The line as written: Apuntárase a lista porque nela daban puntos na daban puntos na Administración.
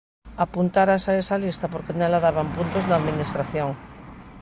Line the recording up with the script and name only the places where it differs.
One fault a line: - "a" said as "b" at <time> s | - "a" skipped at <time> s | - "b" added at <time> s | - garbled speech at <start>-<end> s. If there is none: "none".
- "esa" added at 1.2 s
- "daban puntos na" skipped at 3.0 s